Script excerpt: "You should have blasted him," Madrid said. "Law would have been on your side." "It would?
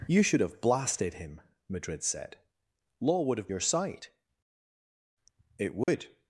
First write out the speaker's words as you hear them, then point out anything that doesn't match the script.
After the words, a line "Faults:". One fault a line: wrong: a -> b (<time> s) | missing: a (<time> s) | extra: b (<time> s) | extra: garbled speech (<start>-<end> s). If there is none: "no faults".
"You should have blasted him," Madrid said. "Law would have your side." "It would?
Faults:
missing: been on (3.5 s)